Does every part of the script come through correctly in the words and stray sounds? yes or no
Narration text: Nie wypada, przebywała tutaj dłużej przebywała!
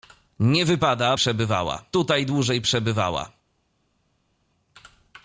yes